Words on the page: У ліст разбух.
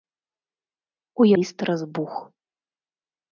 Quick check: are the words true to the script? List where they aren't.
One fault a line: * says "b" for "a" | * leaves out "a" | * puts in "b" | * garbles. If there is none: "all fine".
all fine